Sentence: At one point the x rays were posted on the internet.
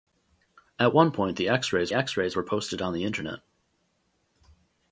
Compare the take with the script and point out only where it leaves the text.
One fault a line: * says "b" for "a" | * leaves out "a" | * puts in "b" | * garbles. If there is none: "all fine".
* puts in "x rays"